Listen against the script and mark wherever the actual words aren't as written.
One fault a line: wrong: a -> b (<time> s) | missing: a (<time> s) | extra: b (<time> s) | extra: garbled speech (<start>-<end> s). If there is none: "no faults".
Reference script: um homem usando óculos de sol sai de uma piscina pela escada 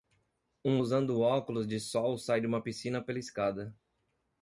missing: homem (0.8 s)